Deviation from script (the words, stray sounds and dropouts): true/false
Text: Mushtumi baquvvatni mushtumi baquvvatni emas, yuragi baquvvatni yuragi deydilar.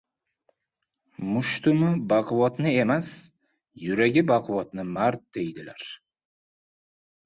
true